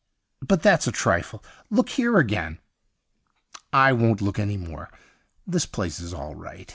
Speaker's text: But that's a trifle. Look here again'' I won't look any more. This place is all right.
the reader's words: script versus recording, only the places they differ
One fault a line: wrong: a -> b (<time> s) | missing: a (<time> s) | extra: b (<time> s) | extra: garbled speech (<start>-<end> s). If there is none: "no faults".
no faults